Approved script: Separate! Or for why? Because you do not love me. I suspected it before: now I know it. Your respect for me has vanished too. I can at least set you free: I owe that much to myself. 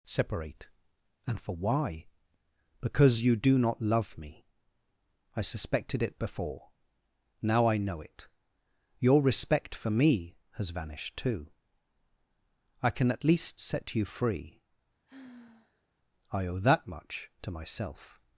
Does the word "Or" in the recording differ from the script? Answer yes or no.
yes